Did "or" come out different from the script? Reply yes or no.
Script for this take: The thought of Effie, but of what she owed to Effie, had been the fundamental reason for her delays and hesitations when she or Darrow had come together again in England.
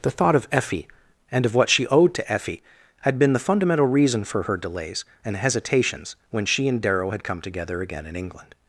yes